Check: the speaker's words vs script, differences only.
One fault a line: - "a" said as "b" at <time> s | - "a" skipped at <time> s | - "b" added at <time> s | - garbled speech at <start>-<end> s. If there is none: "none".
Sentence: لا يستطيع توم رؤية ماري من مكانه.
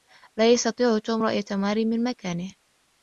none